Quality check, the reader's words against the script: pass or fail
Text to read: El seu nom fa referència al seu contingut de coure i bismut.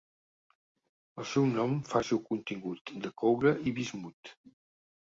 fail